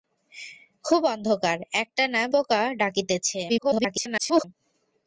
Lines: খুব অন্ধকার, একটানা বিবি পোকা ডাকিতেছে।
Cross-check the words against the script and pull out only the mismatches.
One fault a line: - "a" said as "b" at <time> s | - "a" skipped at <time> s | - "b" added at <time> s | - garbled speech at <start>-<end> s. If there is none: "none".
- "বিবি" skipped at 2.2 s
- garbled speech at 3.5-4.4 s